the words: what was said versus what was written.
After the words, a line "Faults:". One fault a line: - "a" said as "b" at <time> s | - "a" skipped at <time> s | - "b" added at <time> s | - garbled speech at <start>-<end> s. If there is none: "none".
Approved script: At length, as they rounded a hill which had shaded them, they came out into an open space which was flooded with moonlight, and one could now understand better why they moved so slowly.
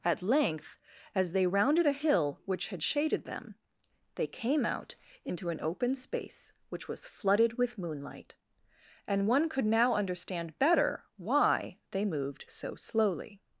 At length, as they rounded a hill which had shaded them, they came out into an open space which was flooded with moonlight, and one could now understand better why they moved so slowly.
Faults:
none